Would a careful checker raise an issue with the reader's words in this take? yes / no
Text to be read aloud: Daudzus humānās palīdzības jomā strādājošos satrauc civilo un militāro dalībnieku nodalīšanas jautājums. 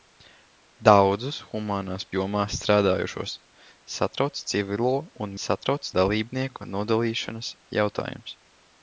yes